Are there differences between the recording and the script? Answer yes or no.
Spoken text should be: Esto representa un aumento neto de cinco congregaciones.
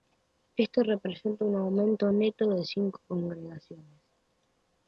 no